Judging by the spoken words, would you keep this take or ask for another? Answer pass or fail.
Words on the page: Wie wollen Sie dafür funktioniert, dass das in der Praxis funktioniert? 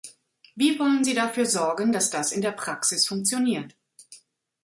fail